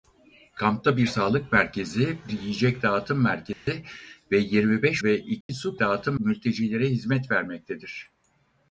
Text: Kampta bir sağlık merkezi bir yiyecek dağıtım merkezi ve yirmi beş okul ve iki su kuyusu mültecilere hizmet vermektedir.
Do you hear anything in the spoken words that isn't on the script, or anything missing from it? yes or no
yes